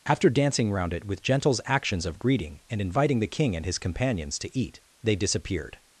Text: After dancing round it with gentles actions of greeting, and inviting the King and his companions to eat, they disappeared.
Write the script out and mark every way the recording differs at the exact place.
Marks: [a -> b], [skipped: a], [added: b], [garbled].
After dancing round it with gentles actions of greeting, and inviting the King and his companions to eat, they disappeared.